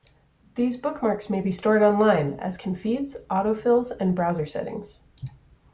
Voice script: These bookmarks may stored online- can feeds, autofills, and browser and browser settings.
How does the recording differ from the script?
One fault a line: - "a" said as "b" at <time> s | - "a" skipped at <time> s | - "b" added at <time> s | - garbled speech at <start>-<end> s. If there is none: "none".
- "be" added at 1.4 s
- "as" added at 2.4 s
- "and browser" skipped at 4.5 s